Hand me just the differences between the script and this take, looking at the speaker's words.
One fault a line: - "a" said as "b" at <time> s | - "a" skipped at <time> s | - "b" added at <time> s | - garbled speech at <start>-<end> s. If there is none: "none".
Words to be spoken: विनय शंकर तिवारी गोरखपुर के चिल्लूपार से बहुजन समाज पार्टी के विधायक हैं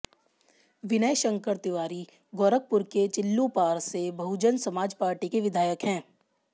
none